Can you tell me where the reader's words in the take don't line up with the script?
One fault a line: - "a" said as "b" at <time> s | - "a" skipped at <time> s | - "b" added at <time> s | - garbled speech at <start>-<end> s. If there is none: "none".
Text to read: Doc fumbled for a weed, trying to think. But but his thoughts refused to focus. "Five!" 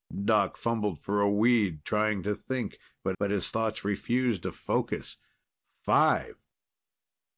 none